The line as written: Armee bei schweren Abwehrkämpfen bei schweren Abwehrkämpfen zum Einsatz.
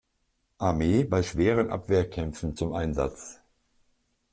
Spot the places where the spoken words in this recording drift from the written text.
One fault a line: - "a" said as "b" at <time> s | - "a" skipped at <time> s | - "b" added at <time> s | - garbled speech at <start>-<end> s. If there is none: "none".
- "bei schweren Abwehrkämpfen" skipped at 2.6 s